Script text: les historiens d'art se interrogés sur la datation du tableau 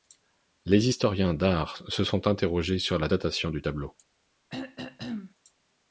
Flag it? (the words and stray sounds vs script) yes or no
yes